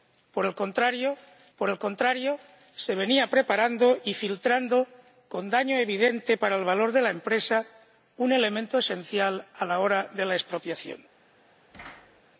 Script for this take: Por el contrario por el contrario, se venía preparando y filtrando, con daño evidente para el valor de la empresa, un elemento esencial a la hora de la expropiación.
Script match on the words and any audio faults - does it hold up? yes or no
no